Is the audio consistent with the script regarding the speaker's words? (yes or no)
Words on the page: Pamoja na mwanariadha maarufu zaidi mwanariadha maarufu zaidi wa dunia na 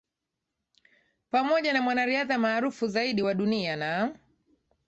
no